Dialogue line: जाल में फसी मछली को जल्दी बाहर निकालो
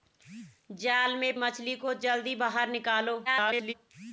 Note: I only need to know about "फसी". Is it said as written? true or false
false